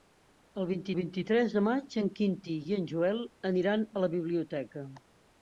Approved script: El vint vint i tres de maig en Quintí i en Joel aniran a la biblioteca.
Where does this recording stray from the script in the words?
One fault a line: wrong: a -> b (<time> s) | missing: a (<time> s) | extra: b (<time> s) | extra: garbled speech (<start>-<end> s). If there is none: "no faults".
no faults